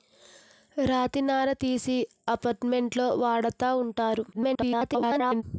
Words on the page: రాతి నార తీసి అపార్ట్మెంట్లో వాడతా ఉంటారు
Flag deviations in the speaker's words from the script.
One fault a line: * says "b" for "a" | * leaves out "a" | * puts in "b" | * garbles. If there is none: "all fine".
* garbles